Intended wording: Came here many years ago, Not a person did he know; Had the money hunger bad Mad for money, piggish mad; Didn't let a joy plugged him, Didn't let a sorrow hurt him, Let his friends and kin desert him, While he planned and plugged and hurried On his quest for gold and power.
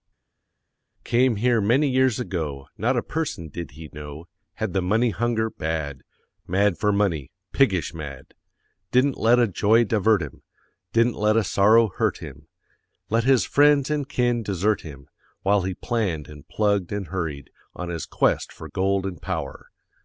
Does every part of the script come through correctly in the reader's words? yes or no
no